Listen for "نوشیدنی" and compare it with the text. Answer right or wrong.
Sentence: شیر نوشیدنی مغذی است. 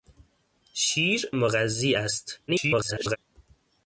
wrong